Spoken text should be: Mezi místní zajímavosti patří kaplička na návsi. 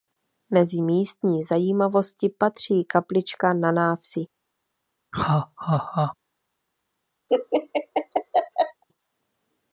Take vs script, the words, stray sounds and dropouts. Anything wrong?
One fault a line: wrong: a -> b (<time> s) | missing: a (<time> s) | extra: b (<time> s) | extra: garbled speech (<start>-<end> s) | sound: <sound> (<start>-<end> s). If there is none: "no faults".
sound: laugh (5.1-6.1 s)
sound: laugh (7.3-8.8 s)